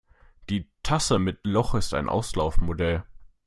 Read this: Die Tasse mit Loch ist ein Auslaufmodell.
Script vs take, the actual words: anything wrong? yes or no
no